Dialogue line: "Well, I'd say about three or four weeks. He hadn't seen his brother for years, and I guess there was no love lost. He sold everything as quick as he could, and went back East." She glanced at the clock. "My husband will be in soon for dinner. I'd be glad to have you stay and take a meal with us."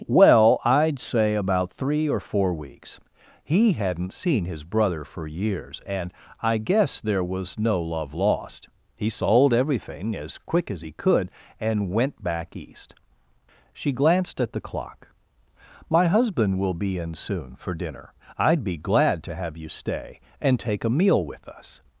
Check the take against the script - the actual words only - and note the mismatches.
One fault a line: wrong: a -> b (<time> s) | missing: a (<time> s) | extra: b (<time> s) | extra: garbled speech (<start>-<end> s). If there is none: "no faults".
no faults